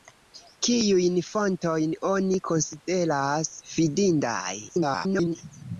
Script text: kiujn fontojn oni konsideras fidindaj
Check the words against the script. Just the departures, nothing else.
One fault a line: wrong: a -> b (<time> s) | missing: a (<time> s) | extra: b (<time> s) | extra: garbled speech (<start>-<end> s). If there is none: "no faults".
extra: garbled speech (4.7-5.4 s)